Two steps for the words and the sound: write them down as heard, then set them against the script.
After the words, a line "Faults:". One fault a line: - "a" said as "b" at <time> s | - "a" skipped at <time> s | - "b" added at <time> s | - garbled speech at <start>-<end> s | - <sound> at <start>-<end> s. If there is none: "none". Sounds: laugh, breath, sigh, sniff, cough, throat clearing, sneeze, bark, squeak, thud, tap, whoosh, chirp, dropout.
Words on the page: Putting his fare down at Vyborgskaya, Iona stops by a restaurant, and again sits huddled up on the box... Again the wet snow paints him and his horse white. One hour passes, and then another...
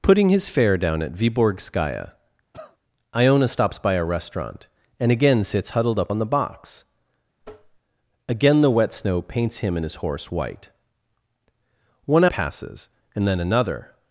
Putting his fare down at Vyborgskaya, Iona stops by a restaurant, and again sits huddled up on the box... Again the wet snow paints him and his horse white. One passes, and then another...
Faults:
- cough at 2.5-2.8 s
- tap at 7.4-7.8 s
- "hour" skipped at 12.3 s